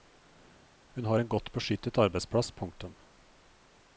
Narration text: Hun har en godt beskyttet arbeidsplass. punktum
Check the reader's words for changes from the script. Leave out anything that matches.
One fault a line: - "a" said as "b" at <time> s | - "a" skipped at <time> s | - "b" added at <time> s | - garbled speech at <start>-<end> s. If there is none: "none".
none